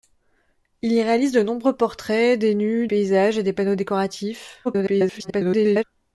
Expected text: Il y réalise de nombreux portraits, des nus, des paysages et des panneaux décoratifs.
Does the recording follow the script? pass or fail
fail